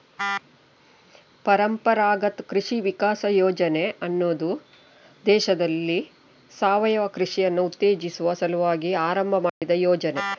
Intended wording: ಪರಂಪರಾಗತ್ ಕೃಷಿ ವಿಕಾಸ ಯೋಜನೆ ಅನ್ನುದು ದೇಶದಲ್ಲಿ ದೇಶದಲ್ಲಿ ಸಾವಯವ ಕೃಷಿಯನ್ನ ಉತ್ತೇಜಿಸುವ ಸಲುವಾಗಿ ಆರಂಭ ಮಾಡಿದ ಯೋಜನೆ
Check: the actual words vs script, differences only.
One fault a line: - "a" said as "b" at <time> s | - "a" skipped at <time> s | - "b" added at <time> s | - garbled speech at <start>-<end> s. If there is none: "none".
- "ದೇಶದಲ್ಲಿ" skipped at 6.0 s